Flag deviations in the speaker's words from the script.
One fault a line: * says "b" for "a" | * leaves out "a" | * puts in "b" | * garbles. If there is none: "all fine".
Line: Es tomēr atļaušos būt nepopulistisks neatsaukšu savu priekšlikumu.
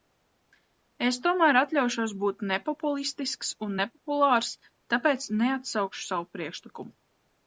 * puts in "un nepopulārs tāpēc"